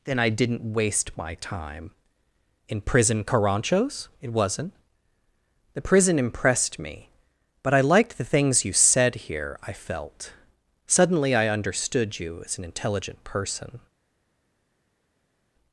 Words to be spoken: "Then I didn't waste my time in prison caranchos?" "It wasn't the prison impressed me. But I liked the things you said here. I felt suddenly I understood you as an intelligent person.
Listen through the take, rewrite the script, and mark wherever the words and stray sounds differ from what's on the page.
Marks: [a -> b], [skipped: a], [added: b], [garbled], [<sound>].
"Then I didn't waste my time in prison caranchos?" "It wasn't the prison impressed me. But I liked the things you said here. I felt suddenly I understood you as an intelligent person.